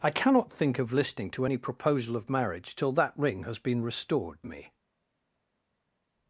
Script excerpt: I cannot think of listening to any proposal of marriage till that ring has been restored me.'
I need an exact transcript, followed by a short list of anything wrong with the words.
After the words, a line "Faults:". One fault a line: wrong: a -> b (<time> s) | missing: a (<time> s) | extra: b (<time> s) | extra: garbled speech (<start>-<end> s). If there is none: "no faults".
I cannot think of listening to any proposal of marriage till that ring has been restored me.'
Faults:
no faults